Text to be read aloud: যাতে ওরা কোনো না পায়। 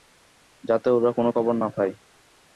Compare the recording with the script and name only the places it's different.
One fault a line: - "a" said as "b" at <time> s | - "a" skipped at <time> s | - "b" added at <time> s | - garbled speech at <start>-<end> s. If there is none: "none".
- "খবর" added at 1.3 s